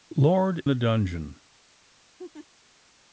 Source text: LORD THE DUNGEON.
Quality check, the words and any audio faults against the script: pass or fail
fail